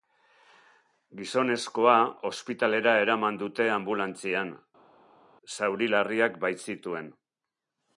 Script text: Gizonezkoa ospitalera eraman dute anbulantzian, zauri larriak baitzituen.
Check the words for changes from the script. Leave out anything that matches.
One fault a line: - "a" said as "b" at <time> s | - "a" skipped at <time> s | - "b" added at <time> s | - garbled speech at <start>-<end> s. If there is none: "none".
none